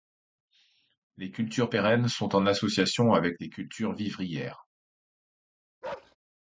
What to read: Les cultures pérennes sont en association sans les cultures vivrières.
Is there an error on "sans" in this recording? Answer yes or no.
yes